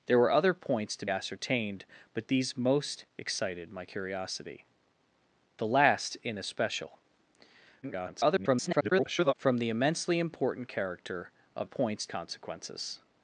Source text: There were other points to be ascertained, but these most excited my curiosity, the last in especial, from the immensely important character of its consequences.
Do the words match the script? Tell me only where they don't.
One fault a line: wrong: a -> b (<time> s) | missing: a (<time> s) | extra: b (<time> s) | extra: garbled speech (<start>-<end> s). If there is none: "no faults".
missing: be (1.1 s)
extra: garbled speech (7.8-9.3 s)
wrong: its -> points (11.6 s)